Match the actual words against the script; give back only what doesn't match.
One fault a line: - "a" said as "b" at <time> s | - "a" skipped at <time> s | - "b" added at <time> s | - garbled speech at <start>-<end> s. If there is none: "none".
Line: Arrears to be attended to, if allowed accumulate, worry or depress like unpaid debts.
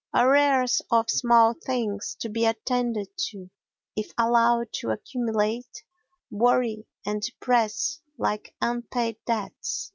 - "of small things" added at 0.9 s
- "to" added at 4.7 s
- "or" said as "and" at 7.1 s